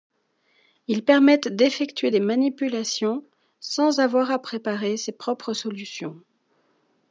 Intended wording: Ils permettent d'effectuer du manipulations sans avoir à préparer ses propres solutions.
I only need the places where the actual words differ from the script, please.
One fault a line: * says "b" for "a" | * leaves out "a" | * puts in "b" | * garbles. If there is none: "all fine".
* says "des" for "du"